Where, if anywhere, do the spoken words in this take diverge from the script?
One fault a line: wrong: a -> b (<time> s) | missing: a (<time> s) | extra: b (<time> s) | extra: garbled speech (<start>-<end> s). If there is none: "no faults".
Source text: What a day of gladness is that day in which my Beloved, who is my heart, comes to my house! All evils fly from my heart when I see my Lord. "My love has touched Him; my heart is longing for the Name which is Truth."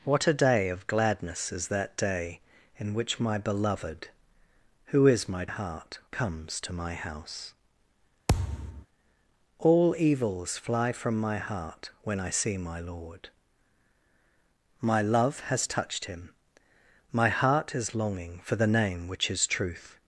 no faults